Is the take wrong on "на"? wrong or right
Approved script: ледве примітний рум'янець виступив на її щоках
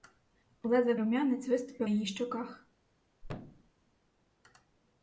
wrong